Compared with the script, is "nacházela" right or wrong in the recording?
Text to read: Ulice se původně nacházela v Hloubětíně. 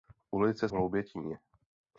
wrong